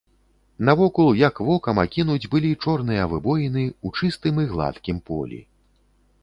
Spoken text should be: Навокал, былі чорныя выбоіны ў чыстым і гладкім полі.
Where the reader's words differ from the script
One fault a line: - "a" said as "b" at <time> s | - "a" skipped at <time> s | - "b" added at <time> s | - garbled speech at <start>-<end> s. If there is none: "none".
- "як вокам акінуць" added at 1.3 s